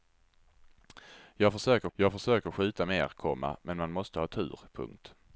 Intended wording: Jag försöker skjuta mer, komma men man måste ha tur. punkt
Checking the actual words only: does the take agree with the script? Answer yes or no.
no